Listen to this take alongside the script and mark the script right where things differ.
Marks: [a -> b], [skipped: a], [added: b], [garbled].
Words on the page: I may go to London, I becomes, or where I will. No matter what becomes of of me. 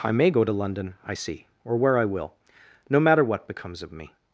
I may go to London, I [becomes, -> see] or where I will. No matter what becomes of [skipped: of] me.